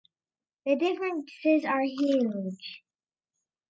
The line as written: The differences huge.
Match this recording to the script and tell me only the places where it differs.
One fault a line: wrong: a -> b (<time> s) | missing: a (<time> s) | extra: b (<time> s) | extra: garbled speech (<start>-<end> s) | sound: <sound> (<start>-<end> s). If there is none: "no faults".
extra: are (1.6 s)